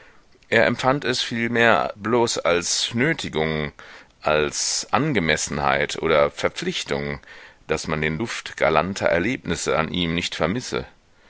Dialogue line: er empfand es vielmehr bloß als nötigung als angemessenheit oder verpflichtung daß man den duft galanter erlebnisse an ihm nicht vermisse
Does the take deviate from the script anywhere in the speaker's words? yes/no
no